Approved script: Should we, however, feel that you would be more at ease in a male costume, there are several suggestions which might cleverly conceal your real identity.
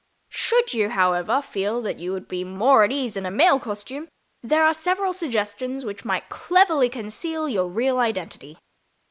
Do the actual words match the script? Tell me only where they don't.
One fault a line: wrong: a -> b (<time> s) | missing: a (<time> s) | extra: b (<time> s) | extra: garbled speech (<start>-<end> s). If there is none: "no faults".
wrong: we -> you (0.7 s)